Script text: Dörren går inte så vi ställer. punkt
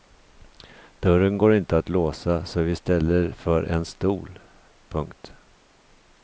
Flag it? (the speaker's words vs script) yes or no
yes